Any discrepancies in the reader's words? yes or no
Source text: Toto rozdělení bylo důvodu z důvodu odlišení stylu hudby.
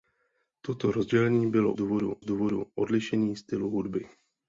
no